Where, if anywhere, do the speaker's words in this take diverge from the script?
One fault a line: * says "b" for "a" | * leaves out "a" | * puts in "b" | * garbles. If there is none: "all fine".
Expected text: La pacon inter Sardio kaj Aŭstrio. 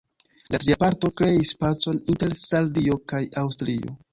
* puts in "tria parto kreis"